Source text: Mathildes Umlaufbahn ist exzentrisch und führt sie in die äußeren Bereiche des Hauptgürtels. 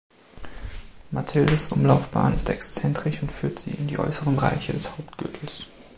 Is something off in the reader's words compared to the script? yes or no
no